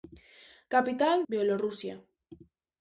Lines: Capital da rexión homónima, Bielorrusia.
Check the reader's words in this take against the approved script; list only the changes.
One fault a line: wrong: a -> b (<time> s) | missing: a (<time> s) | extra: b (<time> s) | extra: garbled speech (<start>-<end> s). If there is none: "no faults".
missing: da rexión homónima (1.2 s)